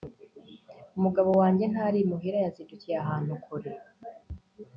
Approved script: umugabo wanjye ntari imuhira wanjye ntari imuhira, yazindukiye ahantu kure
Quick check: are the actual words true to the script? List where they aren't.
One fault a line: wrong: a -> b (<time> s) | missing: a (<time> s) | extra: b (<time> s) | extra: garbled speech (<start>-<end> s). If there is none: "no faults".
missing: wanjye ntari imuhira (2.4 s)